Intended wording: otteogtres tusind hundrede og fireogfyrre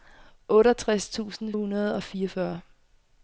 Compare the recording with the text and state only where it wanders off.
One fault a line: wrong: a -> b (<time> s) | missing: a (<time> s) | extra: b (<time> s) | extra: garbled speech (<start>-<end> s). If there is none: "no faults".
no faults